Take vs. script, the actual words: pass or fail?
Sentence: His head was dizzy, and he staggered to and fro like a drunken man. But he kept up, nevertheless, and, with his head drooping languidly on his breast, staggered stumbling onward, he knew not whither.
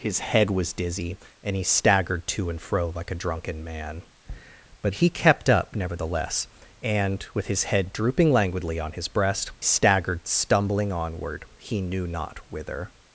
pass